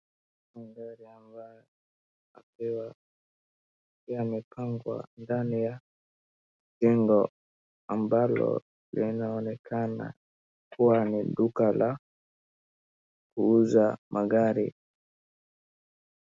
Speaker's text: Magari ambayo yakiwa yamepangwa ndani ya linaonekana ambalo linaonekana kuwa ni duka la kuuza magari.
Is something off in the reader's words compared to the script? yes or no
yes